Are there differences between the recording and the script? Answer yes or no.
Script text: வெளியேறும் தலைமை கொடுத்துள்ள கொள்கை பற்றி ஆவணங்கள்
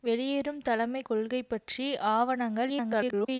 yes